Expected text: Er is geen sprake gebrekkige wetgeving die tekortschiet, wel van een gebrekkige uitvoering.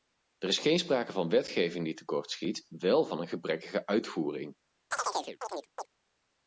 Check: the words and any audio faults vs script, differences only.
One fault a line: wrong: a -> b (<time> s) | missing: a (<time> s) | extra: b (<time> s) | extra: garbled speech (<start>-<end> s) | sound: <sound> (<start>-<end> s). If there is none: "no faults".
wrong: gebrekkige -> van (1.1 s)
sound: chirp (4.9-5.9 s)